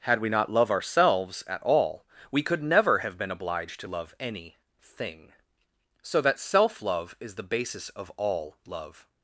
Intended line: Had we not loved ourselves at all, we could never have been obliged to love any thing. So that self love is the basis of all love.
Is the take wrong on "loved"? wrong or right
wrong